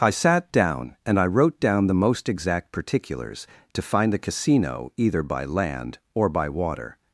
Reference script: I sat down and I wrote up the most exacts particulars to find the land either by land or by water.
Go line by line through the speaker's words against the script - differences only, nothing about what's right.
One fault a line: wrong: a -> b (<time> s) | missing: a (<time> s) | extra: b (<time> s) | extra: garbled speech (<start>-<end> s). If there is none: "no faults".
wrong: up -> down (1.6 s)
wrong: exacts -> exact (2.3 s)
wrong: land -> casino (4.2 s)